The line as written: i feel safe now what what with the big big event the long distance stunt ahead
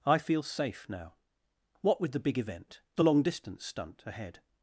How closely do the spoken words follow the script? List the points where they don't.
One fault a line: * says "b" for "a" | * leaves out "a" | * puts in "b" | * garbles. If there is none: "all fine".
* leaves out "what"
* leaves out "big"